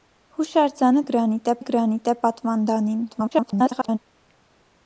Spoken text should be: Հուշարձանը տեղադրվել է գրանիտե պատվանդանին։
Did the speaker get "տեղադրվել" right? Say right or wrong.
wrong